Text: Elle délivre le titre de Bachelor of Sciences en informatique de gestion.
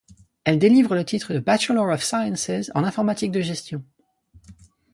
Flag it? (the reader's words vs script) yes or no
no